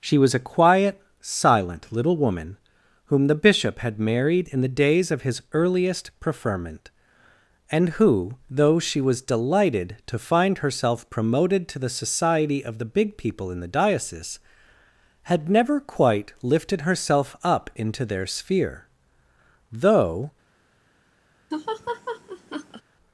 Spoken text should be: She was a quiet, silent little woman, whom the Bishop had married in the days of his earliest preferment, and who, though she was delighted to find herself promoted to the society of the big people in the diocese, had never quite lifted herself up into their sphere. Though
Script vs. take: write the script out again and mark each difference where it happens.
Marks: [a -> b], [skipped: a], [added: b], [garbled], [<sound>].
She was a quiet, silent little woman, whom the Bishop had married in the days of his earliest preferment, and who, though she was delighted to find herself promoted to the society of the big people in the diocese, had never quite lifted herself up into their sphere. Though [laugh]